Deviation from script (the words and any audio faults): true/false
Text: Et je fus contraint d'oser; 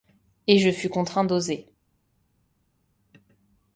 false